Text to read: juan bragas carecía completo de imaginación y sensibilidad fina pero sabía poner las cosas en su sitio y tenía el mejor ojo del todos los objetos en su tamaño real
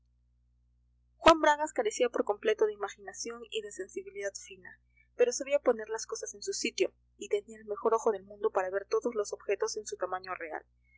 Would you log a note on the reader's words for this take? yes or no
yes